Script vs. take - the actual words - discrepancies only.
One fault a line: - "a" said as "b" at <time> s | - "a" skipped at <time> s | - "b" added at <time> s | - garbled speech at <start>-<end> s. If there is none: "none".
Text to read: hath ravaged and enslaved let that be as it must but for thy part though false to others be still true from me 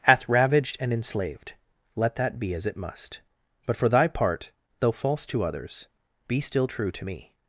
- "from" said as "to" at 6.9 s